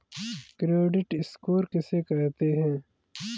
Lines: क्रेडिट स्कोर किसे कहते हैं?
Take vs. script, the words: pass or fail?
pass